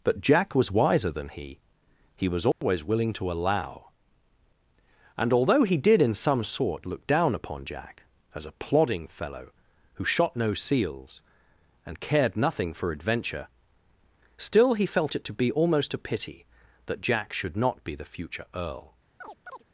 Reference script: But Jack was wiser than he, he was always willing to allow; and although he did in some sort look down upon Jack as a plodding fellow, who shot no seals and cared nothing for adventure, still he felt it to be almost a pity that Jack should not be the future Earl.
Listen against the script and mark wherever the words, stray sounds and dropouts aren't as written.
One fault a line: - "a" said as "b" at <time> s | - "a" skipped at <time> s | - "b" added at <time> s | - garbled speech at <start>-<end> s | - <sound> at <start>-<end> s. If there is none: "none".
- dropout at 2.5-2.6 s
- chirp at 19.2-19.6 s